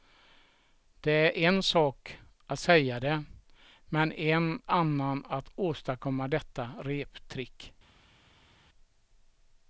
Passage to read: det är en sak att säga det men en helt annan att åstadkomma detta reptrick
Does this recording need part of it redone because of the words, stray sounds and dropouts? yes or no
yes